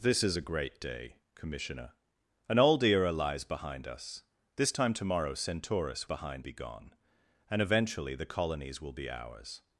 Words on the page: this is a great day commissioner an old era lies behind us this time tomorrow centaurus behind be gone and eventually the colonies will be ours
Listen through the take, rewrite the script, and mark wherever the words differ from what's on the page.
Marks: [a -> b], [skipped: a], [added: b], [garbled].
this is a great day commissioner an old era lies behind us this time tomorrow centaurus behind be gone and eventually the colonies will be ours